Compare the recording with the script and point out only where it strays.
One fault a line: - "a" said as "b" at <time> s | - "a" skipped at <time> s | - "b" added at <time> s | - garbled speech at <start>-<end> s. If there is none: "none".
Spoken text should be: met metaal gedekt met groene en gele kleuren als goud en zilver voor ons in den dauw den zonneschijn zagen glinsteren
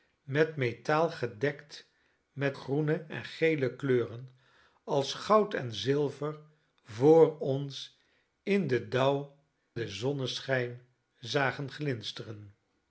none